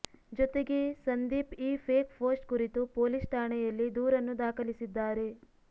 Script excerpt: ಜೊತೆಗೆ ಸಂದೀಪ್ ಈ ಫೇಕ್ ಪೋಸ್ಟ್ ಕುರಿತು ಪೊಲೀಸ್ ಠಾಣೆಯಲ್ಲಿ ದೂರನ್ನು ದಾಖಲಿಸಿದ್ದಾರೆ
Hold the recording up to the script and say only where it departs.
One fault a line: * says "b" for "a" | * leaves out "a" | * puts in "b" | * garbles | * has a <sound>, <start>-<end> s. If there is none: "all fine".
all fine